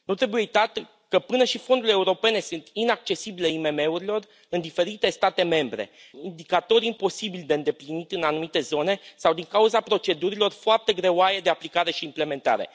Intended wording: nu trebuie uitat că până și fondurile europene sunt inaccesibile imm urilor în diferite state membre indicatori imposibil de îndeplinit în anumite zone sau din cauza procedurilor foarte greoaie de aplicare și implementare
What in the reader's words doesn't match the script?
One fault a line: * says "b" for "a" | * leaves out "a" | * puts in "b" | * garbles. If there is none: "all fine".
all fine